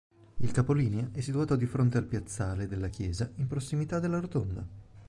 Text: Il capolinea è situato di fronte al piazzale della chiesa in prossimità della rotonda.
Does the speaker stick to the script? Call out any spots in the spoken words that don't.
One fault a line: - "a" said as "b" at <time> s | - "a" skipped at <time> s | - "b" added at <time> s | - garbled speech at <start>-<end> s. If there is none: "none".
none